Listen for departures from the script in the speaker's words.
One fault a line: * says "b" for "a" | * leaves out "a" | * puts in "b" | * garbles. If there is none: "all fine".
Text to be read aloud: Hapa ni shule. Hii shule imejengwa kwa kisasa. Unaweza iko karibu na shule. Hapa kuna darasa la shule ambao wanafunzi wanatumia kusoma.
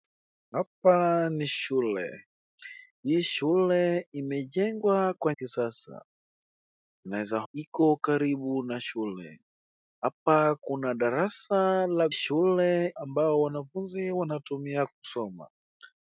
all fine